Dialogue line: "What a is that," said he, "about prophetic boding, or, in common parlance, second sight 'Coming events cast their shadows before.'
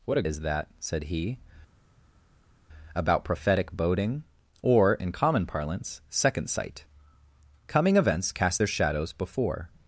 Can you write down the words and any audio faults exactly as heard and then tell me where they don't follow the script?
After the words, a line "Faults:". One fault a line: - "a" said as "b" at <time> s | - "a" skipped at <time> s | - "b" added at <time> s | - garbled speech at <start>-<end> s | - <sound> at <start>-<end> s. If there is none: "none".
"What a is that," said he, "about prophetic boding, or, in common parlance, second sight 'Coming events cast their shadows before.'
Faults:
none